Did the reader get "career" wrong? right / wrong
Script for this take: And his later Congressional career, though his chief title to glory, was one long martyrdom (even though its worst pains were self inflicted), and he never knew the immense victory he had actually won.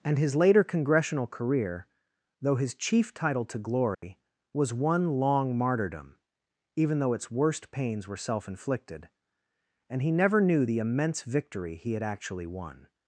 right